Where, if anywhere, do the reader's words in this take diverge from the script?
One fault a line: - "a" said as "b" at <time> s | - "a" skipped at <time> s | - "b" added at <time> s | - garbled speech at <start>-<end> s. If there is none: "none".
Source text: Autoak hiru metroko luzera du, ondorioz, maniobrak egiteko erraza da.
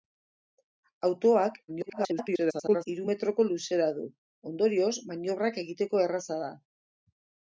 - garbled speech at 1.7-2.9 s